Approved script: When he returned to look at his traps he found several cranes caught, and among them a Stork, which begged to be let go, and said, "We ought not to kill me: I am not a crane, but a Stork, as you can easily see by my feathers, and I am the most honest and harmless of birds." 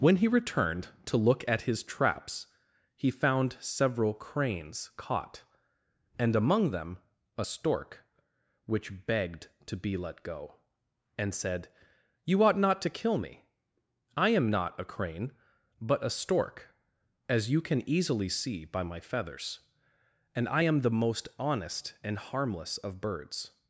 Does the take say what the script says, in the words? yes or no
no